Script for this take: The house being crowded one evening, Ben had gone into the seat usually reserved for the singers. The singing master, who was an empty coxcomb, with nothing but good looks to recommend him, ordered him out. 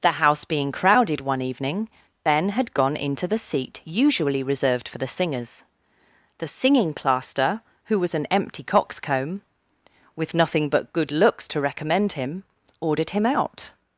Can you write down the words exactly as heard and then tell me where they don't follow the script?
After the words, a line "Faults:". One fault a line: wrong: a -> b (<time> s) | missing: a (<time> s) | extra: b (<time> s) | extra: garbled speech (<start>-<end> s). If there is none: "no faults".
The house being crowded one evening, Ben had gone into the seat usually reserved for the singers. The singing plaster, who was an empty coxcomb, with nothing but good looks to recommend him, ordered him out.
Faults:
wrong: master -> plaster (7.0 s)